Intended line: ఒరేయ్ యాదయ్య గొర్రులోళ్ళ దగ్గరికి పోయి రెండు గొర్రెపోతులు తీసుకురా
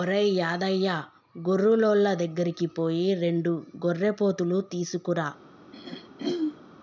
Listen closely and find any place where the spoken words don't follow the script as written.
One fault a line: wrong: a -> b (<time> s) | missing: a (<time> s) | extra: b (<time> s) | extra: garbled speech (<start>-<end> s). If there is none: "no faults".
no faults